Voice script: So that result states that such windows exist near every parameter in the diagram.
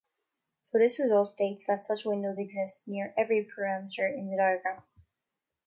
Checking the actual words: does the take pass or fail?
fail